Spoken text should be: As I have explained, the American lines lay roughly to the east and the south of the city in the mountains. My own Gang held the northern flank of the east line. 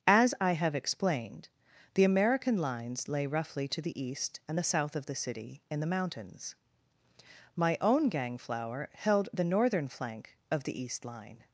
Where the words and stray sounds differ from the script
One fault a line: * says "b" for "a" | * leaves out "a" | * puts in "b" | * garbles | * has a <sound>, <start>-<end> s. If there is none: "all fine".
* puts in "flower"